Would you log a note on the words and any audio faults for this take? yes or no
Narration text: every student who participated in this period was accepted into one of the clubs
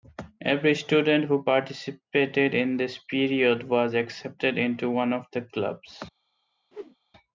yes